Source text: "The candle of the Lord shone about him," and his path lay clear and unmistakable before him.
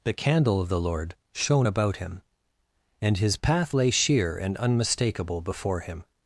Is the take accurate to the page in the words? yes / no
no